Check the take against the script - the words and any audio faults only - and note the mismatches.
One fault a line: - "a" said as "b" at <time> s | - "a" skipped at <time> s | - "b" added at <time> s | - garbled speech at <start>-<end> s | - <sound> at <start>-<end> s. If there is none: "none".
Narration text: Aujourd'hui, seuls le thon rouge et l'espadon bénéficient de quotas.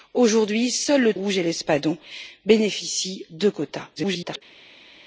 - "thon" skipped at 1.1 s
- garbled speech at 4.0-4.4 s